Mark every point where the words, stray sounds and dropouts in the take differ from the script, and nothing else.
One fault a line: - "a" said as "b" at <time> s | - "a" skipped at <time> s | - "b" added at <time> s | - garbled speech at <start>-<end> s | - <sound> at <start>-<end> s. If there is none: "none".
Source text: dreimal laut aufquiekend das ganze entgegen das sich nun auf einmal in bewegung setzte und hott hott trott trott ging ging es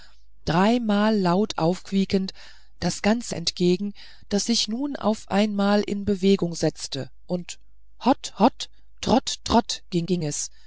none